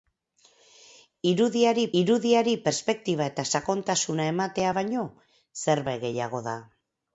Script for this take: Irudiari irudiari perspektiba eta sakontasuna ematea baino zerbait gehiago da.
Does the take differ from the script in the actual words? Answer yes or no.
no